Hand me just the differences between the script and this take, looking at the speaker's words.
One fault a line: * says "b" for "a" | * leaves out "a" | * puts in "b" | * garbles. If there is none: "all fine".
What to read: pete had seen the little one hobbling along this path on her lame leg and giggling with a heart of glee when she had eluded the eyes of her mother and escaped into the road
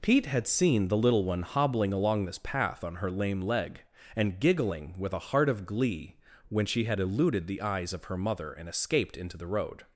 all fine